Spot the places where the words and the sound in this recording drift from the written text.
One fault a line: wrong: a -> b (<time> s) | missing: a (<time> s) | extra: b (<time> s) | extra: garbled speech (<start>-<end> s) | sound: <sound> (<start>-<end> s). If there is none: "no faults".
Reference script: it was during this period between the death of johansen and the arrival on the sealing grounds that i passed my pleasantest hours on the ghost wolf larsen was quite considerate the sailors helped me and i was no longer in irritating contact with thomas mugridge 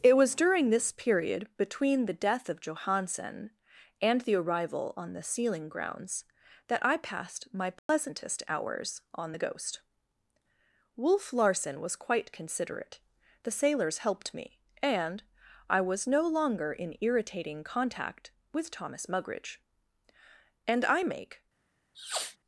sound: dropout (7.8-7.9 s)
extra: and i make (20.7 s)
sound: sniff (21.9-22.4 s)